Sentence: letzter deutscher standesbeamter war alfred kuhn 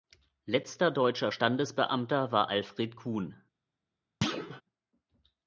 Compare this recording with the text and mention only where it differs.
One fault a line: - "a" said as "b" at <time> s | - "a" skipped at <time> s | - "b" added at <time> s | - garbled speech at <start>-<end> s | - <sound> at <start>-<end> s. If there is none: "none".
- thud at 4.2-4.6 s